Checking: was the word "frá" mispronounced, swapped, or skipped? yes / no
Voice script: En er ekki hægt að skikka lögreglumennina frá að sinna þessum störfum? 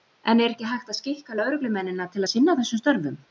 yes